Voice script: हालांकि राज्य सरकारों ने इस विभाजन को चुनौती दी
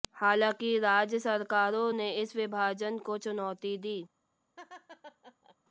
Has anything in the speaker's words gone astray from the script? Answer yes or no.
no